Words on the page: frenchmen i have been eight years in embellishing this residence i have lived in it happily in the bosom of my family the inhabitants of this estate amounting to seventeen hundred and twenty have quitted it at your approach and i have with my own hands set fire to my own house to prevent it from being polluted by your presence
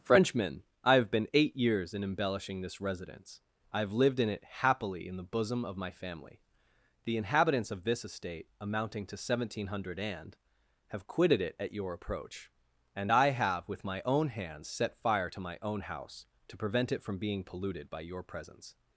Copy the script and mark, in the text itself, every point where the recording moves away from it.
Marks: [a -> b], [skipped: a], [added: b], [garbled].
frenchmen i have been eight years in embellishing this residence i have lived in it happily in the bosom of my family the inhabitants of this estate amounting to seventeen hundred and [skipped: twenty] have quitted it at your approach and i have with my own hands set fire to my own house to prevent it from being polluted by your presence